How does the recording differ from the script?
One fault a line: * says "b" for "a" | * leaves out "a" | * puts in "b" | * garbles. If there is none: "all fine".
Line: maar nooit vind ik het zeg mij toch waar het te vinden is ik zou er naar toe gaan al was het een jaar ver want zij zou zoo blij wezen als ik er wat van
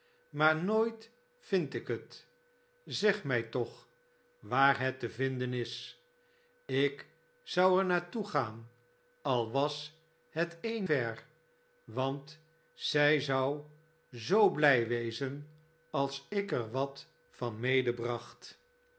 * leaves out "jaar"